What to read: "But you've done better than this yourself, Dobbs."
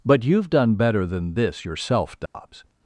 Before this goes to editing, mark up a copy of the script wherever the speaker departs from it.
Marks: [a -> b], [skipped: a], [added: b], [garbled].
"But you've done better than this yourself, Dobbs."